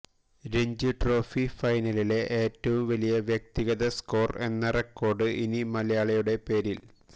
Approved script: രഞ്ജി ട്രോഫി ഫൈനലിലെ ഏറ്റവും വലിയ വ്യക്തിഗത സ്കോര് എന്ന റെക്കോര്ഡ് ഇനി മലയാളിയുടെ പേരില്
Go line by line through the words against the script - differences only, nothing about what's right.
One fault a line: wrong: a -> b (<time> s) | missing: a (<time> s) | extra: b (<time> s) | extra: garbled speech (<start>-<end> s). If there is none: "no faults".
no faults